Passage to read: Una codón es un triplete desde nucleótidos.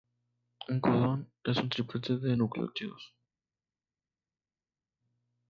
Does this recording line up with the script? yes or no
no